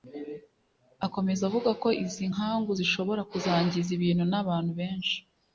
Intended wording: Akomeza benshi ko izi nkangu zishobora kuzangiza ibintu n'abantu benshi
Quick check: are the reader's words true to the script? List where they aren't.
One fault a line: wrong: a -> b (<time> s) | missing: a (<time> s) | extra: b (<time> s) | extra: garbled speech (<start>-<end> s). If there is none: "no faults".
wrong: benshi -> avuga (1.5 s)